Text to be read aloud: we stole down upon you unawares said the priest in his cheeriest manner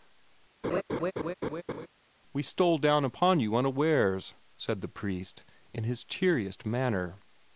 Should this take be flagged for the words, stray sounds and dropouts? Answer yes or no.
yes